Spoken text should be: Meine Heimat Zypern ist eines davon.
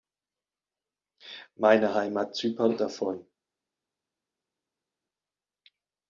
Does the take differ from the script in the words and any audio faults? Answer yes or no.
yes